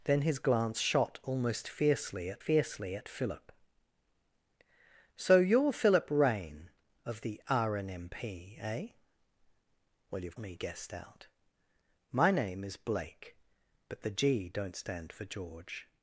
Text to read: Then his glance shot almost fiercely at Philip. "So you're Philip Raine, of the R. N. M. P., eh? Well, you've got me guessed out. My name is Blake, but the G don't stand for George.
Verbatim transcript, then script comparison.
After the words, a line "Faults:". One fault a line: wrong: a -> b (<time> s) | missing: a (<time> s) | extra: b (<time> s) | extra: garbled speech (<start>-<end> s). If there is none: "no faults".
Then his glance shot almost fiercely at fiercely at Philip. "So you're Philip Raine, of the R. N. M. P., eh? Well, you've me guessed out. My name is Blake, but the G don't stand for George.
Faults:
extra: fiercely at (2.4 s)
missing: got (10.4 s)